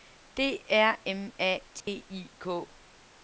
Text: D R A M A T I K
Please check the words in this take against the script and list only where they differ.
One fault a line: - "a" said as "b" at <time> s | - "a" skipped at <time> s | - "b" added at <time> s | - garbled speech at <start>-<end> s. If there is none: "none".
- "A" skipped at 1.0 s